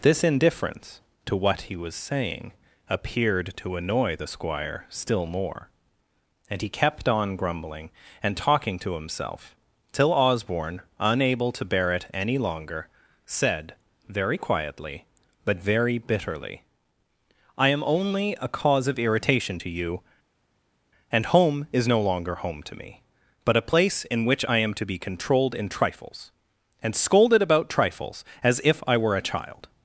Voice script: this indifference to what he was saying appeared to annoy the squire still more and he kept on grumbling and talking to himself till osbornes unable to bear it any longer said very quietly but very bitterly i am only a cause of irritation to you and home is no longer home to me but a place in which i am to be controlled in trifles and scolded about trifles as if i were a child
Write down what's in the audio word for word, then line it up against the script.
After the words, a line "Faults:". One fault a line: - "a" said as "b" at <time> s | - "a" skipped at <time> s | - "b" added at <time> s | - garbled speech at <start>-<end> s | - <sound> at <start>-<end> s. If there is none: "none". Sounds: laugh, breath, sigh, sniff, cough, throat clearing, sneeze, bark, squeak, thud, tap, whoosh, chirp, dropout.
this indifference to what he was saying appeared to annoy the squire still more and he kept on grumbling and talking to himself till osborne unable to bear it any longer said very quietly but very bitterly i am only a cause of irritation to you and home is no longer home to me but a place in which i am to be controlled in trifles and scolded about trifles as if i were a child
Faults:
- "osbornes" said as "osborne" at 10.1 s